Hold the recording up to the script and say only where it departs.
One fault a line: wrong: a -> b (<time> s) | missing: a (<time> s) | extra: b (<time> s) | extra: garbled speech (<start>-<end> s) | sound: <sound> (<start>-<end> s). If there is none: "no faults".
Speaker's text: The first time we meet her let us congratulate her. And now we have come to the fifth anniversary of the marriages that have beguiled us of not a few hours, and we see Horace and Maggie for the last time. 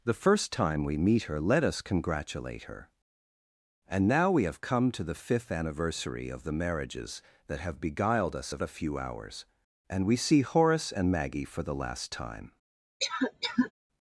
missing: not (8.6 s)
sound: cough (13.0-13.7 s)